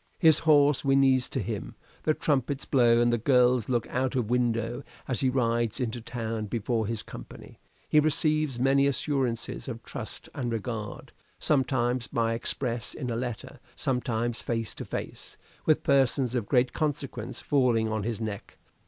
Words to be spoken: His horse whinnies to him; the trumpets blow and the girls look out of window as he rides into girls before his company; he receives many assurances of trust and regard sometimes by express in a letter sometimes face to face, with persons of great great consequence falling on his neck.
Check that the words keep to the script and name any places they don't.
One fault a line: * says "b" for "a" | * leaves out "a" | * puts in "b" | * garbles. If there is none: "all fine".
* says "town" for "girls"
* leaves out "great"